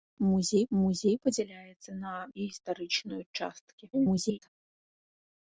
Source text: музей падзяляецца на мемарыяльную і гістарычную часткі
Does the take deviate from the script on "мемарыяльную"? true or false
true